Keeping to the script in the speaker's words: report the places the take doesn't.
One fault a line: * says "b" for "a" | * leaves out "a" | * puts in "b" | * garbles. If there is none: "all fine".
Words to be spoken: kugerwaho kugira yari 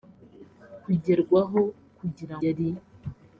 all fine